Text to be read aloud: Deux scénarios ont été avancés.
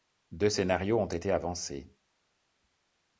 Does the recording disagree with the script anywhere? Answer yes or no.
no